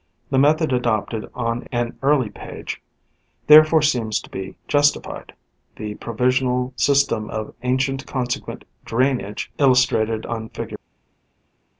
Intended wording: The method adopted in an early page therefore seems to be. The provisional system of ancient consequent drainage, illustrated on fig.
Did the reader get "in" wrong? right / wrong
wrong